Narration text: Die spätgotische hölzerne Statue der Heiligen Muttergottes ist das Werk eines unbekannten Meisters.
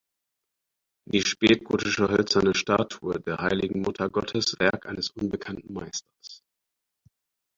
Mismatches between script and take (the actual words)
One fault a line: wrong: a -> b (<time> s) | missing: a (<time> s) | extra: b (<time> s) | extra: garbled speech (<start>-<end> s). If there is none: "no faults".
missing: ist das (4.5 s)